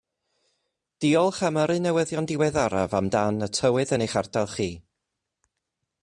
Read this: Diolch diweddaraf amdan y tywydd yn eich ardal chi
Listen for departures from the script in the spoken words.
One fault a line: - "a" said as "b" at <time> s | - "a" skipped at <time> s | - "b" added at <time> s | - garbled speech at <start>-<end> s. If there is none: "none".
- "am yrru newyddion" added at 1.5 s